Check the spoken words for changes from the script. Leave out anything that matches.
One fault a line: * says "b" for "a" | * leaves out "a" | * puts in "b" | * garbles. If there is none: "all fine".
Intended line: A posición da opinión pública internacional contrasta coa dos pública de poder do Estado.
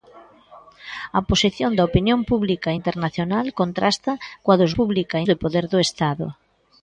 all fine